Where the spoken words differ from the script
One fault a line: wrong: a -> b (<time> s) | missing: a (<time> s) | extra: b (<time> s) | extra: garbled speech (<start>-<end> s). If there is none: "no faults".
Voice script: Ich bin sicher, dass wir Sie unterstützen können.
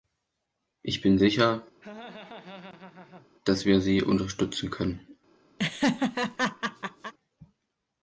no faults